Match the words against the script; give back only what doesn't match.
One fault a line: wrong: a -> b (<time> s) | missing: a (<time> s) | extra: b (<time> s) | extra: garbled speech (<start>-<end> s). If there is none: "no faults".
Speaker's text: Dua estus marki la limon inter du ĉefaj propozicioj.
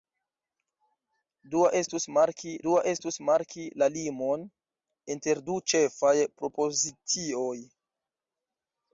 extra: dua estus marki (2.7 s)